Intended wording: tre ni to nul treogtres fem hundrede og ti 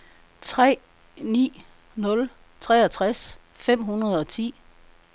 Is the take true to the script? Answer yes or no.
no